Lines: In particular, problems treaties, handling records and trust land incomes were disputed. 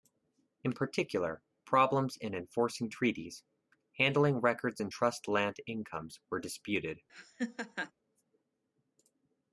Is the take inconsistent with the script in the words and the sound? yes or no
yes